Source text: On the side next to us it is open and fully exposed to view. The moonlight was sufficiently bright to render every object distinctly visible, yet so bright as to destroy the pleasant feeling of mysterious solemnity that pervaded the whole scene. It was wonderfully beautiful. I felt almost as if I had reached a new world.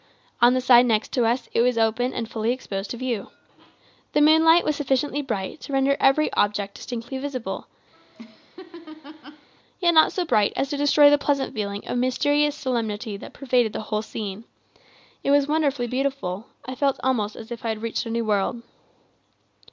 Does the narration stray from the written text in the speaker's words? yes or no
yes